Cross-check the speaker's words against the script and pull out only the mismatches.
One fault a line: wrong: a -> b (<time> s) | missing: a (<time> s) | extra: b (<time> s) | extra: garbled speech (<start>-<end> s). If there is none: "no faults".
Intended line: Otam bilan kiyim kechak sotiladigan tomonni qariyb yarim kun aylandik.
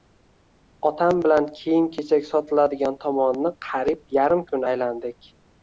no faults